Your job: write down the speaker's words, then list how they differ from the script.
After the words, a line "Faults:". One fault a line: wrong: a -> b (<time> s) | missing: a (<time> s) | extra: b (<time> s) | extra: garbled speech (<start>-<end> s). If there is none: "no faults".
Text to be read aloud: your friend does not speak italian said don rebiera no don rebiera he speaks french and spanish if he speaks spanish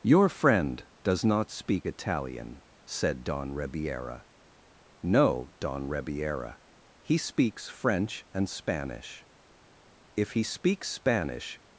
your friend does not speak italian said don rebiera no don rebiera he speaks french and spanish if he speaks spanish
Faults:
no faults